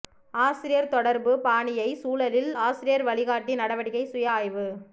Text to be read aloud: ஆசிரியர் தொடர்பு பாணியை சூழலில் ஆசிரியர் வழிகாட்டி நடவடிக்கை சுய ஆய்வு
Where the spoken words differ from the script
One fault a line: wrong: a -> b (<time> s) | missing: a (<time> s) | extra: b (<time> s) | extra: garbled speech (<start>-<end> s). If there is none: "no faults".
no faults